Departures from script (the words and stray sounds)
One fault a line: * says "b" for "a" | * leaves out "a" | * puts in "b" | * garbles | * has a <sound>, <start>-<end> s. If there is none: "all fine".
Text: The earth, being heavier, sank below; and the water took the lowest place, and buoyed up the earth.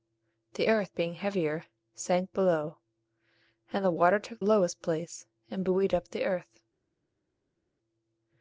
* leaves out "the"